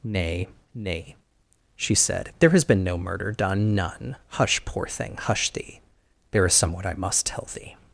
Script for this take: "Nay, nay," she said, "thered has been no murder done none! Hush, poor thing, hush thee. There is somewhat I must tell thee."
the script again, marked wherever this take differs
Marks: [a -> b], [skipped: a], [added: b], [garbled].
"Nay, nay," she said, ["thered -> there] has been no murder done none! Hush, poor thing, hush thee. There is somewhat I must tell thee."